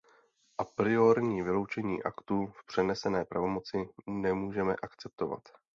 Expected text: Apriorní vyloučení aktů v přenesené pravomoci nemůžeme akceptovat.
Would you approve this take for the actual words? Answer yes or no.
yes